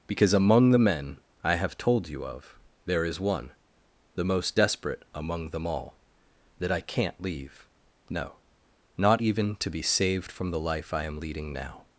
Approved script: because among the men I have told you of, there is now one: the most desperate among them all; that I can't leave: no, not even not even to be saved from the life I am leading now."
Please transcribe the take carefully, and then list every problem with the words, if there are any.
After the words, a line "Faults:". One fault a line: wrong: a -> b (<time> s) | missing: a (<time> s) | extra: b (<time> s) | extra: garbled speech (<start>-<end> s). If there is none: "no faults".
because among the men I have told you of, there is one: the most desperate among them all; that I can't leave: no, not even to be saved from the life I am leading now."
Faults:
missing: now (3.2 s)
missing: not even (9.5 s)